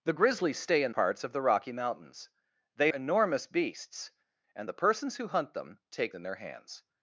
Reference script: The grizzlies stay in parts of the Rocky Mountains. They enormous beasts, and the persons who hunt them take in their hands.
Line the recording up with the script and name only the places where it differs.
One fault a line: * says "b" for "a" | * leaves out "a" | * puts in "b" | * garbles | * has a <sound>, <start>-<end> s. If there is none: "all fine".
all fine